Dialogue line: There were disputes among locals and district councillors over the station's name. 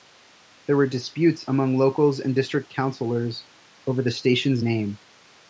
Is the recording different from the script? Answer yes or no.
no